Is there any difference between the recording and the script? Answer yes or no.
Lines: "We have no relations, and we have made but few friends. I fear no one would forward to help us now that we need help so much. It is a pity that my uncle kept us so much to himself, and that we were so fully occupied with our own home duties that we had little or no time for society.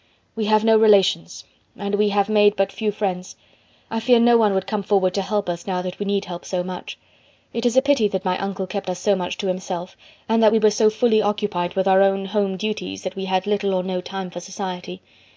yes